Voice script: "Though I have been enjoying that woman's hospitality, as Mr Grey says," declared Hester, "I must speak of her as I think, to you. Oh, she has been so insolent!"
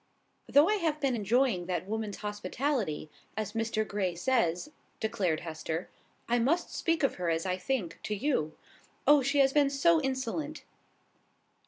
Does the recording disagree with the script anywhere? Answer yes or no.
no